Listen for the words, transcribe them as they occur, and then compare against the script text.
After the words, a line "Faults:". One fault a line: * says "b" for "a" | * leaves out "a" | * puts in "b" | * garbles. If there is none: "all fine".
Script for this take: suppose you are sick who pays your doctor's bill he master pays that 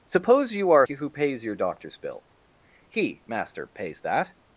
suppose you are who pays your doctor's bill he master pays that
Faults:
* leaves out "sick"